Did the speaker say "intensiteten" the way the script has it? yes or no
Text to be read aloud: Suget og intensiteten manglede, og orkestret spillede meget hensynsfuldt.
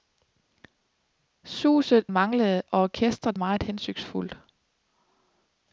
no